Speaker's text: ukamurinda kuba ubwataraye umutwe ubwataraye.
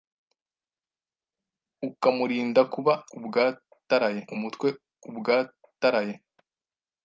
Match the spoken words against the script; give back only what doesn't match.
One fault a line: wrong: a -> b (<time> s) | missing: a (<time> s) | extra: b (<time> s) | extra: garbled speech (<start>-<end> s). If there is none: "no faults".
no faults